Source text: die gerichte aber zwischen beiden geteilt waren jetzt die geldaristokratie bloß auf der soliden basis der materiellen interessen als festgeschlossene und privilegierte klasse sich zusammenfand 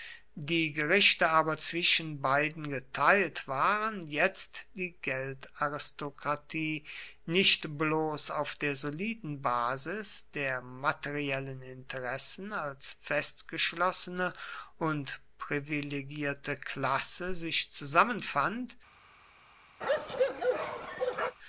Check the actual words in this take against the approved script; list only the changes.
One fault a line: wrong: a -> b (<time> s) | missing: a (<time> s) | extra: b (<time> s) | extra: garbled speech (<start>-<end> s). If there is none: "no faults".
extra: nicht (7.3 s)